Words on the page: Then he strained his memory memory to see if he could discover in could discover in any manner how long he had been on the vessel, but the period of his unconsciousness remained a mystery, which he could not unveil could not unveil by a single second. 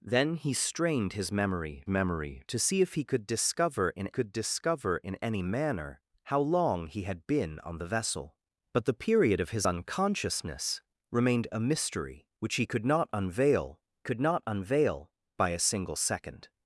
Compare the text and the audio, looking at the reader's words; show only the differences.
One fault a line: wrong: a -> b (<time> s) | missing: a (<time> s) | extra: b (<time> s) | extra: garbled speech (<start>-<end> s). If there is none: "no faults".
no faults